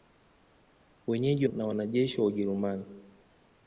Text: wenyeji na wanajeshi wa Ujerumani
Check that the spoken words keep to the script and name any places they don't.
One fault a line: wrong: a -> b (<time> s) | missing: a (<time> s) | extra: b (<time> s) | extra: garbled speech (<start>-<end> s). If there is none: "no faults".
no faults